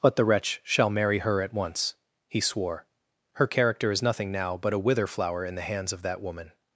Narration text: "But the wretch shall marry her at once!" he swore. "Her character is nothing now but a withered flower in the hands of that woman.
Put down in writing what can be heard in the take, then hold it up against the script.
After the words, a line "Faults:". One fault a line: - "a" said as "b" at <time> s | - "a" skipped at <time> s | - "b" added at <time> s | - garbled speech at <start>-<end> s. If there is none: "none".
"But the wretch shall marry her at once!" he swore. "Her character is nothing now but a wither flower in the hands of that woman.
Faults:
- "withered" said as "wither" at 4.8 s